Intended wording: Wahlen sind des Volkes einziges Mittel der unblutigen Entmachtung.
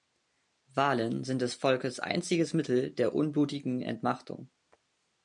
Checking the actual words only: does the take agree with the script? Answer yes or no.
yes